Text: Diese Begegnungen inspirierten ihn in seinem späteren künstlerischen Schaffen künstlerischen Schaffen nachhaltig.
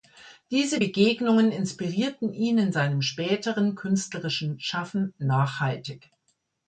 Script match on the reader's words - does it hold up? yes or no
no